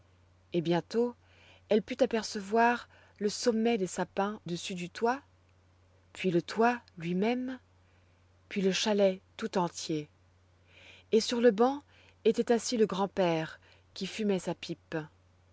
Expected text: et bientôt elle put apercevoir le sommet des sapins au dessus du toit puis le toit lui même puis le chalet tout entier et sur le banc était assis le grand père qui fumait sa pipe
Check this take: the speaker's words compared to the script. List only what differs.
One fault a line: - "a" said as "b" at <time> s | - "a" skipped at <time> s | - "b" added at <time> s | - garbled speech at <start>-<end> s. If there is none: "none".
- "au" skipped at 4.4 s